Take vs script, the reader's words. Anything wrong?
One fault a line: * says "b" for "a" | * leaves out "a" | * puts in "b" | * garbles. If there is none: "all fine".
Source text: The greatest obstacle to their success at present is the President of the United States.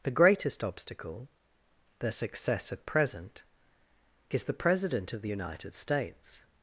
* leaves out "to"